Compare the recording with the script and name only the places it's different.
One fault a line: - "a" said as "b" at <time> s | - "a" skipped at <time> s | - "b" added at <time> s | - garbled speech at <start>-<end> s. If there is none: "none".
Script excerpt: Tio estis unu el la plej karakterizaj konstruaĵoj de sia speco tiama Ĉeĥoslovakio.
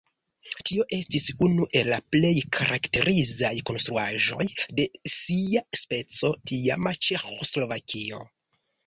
none